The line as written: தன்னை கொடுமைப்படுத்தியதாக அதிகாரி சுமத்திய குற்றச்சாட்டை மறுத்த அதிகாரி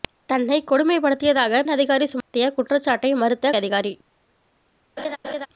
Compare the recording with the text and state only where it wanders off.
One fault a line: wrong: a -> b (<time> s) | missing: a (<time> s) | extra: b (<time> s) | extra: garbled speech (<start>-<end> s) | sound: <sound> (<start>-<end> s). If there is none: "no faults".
sound: dropout (2.2-2.3 s)
sound: laugh (5.0-5.5 s)